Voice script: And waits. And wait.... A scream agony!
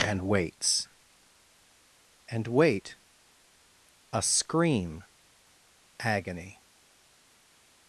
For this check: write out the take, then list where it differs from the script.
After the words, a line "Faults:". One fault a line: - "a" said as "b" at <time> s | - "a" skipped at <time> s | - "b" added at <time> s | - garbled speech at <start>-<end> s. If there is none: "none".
And waits. And wait.... A scream agony!
Faults:
none